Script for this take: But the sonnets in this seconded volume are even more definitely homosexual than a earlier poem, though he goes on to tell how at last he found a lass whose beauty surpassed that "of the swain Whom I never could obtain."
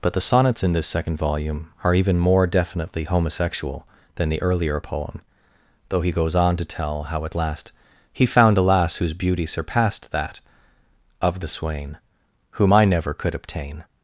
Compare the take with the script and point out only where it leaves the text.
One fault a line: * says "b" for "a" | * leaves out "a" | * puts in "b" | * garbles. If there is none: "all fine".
* says "second" for "seconded"
* says "the" for "a"